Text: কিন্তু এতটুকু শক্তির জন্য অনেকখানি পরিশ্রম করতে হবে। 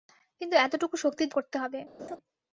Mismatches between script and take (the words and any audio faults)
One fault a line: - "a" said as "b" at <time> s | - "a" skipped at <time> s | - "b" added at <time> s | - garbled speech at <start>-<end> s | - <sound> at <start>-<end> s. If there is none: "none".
- "জন্য অনেকখানি পরিশ্রম" skipped at 1.3 s
- laugh at 2.0-2.2 s